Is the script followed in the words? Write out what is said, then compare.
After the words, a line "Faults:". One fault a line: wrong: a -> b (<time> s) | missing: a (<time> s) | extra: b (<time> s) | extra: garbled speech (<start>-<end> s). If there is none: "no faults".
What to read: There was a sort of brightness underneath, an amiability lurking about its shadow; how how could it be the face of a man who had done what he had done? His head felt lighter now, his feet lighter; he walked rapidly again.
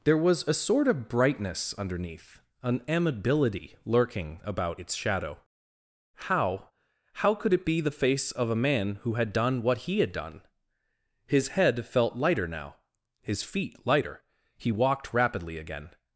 There was a sort of brightness underneath, an amiability lurking about its shadow; how how could it be the face of a man who had done what he had done? His head felt lighter now, his feet lighter; he walked rapidly again.
Faults:
no faults